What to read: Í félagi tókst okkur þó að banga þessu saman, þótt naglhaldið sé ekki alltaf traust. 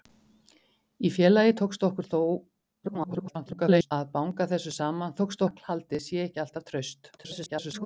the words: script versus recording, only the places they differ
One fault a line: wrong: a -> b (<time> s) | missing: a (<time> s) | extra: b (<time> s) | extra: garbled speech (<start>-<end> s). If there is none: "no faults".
extra: garbled speech (2.8-3.9 s)
wrong: þótt -> tókst (5.2 s)
extra: garbled speech (7.2-7.9 s)